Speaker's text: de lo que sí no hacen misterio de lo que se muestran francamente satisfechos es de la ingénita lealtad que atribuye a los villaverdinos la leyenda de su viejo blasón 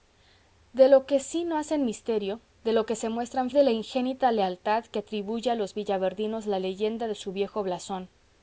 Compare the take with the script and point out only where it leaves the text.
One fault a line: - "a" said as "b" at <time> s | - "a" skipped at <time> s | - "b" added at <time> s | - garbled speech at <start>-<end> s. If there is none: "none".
- "francamente satisfechos es" skipped at 3.5 s